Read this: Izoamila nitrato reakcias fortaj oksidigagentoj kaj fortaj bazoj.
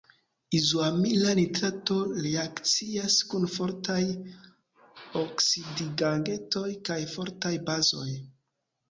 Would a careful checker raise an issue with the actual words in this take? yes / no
yes